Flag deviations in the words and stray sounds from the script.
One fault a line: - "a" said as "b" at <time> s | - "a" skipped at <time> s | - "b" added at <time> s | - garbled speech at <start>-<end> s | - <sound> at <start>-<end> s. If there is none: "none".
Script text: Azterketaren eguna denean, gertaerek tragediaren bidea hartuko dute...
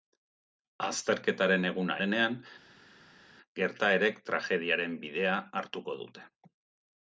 none